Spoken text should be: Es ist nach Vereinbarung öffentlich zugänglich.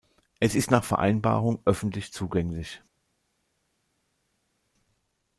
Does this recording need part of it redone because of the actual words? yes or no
no